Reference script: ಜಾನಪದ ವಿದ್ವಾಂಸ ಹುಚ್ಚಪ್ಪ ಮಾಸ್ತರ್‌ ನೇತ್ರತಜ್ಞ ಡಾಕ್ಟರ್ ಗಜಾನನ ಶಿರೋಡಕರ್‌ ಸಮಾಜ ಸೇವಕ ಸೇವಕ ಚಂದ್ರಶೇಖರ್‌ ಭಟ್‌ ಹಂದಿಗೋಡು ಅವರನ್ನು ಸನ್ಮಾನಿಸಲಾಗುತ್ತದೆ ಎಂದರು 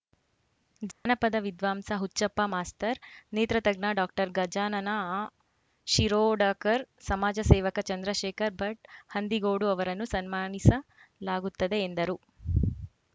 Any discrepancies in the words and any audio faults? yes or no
yes